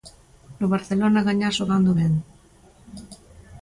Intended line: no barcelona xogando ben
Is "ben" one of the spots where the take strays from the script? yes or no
no